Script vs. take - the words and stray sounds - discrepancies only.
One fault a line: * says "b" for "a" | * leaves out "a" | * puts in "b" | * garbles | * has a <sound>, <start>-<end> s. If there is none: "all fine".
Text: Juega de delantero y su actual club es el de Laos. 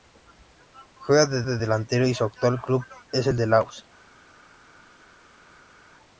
* puts in "de"